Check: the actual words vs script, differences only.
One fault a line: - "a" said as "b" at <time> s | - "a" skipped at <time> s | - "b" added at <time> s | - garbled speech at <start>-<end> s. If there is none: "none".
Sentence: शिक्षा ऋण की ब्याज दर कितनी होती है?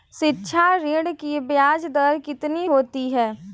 none